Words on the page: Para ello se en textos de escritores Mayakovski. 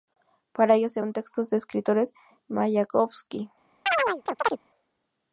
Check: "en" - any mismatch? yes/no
no